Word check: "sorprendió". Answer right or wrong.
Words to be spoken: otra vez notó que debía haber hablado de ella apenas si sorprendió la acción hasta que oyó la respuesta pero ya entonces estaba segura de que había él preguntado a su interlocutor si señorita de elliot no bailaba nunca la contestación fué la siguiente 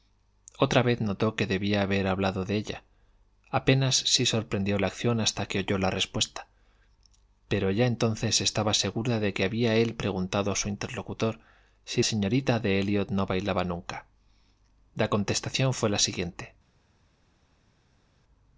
right